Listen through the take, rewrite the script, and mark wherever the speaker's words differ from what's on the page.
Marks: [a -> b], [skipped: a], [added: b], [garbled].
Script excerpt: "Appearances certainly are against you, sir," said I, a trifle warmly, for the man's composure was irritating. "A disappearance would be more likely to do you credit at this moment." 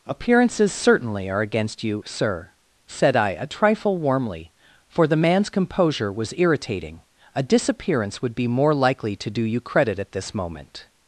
"Appearances certainly are against you, sir," said I, a trifle warmly, for the man's composure was irritating. "A disappearance would be more likely to do you credit at this moment."